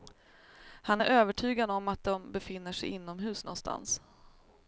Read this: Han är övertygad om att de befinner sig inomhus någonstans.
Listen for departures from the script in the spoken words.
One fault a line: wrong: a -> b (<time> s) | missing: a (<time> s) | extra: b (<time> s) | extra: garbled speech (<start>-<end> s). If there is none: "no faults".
no faults